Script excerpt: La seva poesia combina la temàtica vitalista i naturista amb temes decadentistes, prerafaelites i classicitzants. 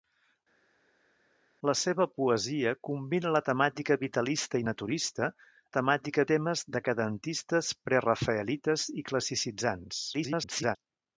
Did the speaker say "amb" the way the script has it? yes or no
no